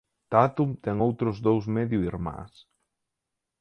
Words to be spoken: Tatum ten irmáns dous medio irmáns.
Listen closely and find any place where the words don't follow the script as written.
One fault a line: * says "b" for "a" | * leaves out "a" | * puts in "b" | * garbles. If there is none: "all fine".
* says "outros" for "irmáns"